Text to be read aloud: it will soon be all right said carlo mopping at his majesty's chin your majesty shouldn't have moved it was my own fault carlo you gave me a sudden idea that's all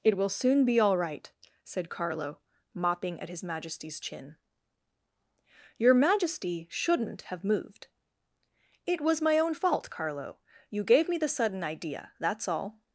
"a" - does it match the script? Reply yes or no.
no